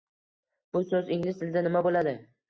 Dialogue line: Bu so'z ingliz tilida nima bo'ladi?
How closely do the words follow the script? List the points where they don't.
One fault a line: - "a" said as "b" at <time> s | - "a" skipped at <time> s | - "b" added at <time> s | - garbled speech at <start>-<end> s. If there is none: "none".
none